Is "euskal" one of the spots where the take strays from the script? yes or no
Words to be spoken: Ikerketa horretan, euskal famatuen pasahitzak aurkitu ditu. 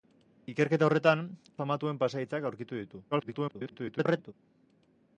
yes